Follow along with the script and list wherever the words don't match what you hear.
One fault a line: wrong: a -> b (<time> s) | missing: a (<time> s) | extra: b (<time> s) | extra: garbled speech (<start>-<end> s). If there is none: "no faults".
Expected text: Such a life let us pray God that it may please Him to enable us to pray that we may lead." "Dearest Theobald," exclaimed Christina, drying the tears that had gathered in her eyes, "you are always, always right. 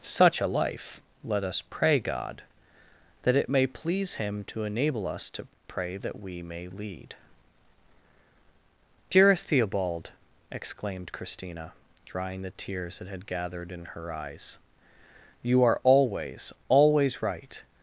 no faults